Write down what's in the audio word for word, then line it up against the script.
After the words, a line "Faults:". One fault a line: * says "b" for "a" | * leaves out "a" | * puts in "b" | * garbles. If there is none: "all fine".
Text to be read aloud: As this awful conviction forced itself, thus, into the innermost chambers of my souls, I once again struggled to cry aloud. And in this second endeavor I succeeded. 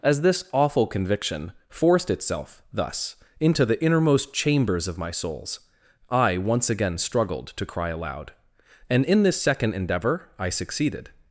As this awful conviction forced itself, thus, into the innermost chambers of my souls, I once again struggled to cry aloud. And in this second endeavor I succeeded.
Faults:
all fine